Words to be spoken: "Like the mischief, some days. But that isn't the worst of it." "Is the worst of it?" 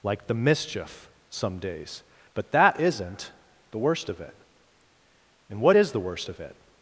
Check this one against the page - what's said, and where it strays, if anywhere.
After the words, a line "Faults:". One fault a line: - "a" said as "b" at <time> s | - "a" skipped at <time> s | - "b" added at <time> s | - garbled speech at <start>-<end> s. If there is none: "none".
"Like the mischief, some days. But that isn't the worst of it." "And what is the worst of it?"
Faults:
- "And what" added at 5.5 s